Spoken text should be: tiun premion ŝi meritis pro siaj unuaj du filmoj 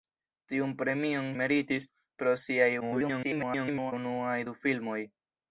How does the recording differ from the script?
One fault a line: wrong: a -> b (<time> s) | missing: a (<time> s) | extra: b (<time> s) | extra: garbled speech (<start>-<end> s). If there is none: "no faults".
missing: ŝi (1.3 s)
extra: garbled speech (2.8-3.9 s)